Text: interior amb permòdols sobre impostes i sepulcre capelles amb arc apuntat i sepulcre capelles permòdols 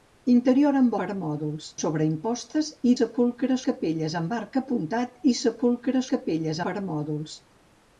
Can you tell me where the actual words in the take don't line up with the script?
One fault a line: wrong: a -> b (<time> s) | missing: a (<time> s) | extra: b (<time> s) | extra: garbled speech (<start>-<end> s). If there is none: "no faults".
no faults